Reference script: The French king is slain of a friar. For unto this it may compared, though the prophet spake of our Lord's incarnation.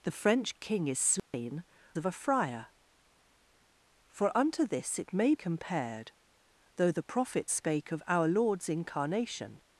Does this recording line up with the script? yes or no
yes